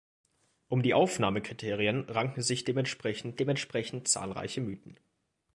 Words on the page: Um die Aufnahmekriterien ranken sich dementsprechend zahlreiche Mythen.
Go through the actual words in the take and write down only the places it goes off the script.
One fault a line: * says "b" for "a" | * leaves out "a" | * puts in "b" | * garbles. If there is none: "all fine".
* puts in "dementsprechend"